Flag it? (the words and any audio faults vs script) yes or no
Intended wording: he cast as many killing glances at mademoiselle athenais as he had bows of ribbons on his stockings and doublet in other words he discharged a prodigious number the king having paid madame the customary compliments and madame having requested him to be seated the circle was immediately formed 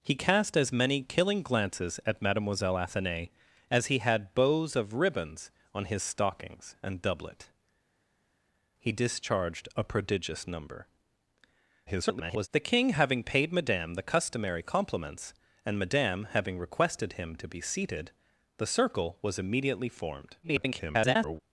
yes